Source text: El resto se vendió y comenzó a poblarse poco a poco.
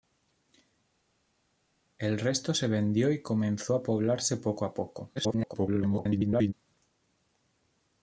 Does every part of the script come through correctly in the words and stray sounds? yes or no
no